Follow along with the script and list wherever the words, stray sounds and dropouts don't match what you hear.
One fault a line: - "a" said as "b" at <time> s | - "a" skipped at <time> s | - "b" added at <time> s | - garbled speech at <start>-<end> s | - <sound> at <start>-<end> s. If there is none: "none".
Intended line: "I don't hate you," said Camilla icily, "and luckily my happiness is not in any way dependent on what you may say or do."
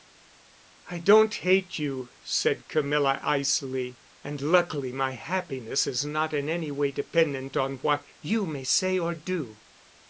none